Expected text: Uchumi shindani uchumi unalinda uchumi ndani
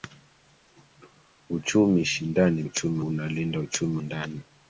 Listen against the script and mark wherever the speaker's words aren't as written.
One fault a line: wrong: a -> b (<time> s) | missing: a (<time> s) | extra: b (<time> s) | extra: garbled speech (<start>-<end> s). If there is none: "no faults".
no faults